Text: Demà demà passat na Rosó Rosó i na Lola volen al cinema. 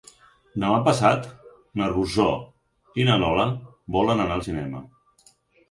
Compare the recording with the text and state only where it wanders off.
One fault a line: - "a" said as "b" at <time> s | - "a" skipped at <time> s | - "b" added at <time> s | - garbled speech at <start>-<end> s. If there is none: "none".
- "demà" skipped at 0.8 s
- "Rosó" skipped at 2.3 s
- "anar" added at 4.3 s